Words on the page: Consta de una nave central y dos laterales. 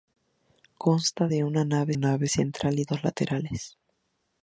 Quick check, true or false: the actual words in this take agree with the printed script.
false